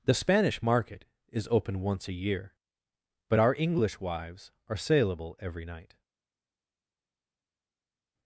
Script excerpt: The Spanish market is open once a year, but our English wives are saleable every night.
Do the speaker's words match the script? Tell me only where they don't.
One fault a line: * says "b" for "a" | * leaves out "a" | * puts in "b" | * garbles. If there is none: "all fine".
all fine